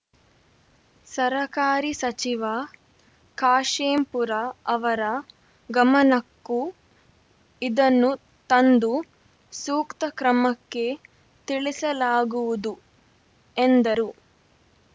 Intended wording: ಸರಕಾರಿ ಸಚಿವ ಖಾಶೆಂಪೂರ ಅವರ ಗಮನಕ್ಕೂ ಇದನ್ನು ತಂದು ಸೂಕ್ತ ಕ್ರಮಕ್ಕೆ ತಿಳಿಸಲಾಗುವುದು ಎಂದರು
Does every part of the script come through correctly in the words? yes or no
yes